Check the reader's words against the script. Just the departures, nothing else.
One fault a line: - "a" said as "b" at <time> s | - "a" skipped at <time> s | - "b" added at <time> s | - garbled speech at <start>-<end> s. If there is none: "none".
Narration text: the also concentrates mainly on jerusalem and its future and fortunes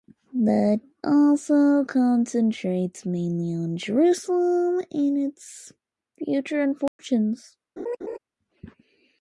none